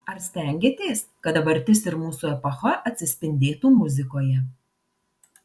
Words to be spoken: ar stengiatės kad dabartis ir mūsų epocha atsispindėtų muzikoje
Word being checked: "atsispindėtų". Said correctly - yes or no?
yes